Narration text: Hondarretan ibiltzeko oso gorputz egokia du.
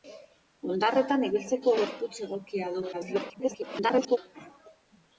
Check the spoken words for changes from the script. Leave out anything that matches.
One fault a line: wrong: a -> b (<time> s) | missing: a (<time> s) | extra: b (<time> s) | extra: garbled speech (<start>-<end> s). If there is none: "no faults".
missing: oso (1.8 s)
extra: garbled speech (2.9-4.2 s)